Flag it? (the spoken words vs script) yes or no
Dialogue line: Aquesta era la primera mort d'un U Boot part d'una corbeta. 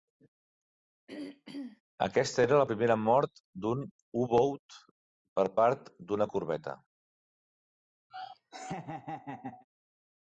yes